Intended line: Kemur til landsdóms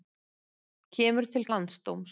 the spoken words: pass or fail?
pass